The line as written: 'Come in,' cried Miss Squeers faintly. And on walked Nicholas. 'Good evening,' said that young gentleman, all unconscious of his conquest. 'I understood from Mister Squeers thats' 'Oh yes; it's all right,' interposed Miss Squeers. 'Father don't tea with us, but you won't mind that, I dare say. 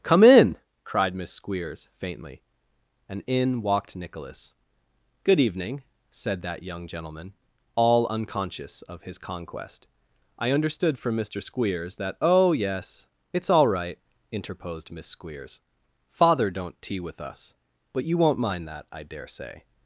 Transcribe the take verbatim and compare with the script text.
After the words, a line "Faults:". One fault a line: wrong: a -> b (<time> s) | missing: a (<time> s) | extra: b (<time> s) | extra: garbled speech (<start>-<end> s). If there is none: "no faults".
'Come in,' cried Miss Squeers faintly. And in walked Nicholas. 'Good evening,' said that young gentleman, all unconscious of his conquest. 'I understood from Mister Squeers that' 'Oh yes; it's all right,' interposed Miss Squeers. 'Father don't tea with us, but you won't mind that, I dare say.
Faults:
wrong: on -> in (3.3 s)
wrong: thats -> that (12.0 s)